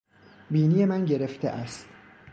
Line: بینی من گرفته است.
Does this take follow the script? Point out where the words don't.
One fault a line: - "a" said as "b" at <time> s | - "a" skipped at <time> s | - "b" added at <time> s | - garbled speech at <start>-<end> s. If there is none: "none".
none